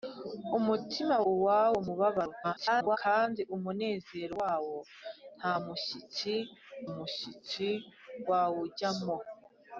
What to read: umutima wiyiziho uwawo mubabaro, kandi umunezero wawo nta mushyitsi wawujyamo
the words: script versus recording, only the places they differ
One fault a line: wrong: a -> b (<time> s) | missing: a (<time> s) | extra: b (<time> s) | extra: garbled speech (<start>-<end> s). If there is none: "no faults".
missing: wiyiziho (1.1 s)
extra: garbled speech (2.4-3.0 s)
extra: mushyitsi (6.9 s)